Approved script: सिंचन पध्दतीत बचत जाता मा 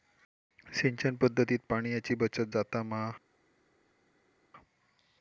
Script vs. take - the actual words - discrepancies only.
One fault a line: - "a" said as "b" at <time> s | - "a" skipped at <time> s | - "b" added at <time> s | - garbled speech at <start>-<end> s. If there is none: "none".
- "पाणयाची" added at 1.7 s